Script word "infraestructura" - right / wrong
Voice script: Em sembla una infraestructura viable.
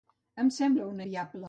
wrong